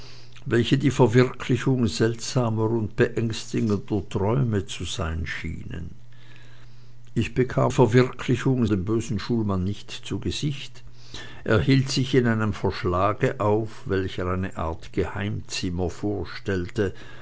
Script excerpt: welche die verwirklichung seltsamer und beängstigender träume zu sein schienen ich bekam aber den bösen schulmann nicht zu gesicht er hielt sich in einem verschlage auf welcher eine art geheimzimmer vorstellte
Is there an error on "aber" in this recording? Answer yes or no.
yes